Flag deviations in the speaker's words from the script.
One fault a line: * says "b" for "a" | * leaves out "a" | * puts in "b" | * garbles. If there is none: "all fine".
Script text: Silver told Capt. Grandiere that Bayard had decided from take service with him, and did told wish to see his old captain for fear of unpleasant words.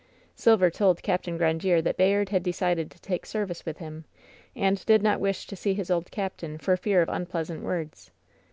* says "to" for "from"
* says "not" for "told"